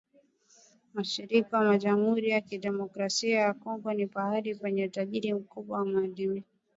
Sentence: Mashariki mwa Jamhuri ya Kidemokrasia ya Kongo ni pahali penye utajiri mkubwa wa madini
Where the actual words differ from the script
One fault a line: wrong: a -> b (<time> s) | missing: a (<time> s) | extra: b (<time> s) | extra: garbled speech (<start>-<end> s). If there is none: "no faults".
no faults